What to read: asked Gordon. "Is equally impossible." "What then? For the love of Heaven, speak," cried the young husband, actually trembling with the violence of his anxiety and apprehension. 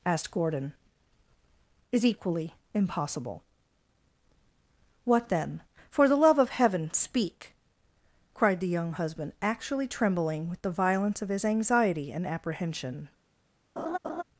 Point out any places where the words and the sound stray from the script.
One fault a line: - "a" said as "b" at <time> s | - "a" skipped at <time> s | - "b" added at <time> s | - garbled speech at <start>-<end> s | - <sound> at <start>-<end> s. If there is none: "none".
- laugh at 13.8-14.2 s